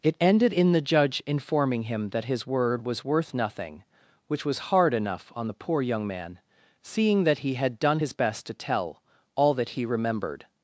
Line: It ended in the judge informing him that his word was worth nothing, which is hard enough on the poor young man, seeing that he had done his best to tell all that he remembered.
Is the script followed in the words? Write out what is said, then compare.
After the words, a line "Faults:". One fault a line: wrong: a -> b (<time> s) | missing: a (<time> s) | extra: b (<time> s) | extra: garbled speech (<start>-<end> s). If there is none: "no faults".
It ended in the judge informing him that his word was worth nothing, which was hard enough on the poor young man, seeing that he had done his best to tell all that he remembered.
Faults:
wrong: is -> was (4.5 s)